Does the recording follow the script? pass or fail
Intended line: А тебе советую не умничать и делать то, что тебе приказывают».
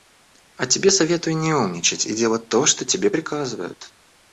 pass